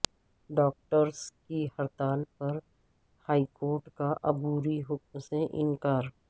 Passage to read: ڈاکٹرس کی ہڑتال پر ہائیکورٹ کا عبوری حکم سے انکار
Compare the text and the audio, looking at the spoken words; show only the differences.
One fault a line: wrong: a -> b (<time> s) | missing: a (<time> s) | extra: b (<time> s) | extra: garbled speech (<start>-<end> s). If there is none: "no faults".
no faults